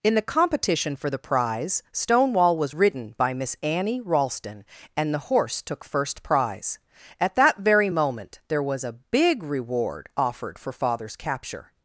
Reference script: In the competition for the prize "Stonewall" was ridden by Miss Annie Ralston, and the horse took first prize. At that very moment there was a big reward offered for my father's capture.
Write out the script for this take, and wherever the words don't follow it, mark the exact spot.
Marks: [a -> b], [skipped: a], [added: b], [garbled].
In the competition for the prize "Stonewall" was ridden by Miss Annie Ralston, and the horse took first prize. At that very moment there was a big reward offered for [skipped: my] father's capture.